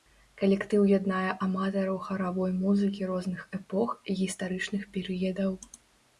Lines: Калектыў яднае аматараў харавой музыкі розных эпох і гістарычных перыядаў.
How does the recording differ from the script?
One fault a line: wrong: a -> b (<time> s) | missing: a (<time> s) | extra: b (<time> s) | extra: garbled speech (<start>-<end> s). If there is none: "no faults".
no faults